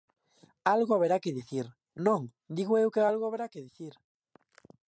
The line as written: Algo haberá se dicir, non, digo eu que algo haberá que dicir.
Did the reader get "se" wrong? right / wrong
wrong